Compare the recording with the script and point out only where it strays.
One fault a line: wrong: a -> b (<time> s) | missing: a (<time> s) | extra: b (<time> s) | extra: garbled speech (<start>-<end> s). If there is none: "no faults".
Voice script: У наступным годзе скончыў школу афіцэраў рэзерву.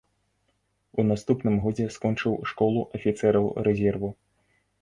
no faults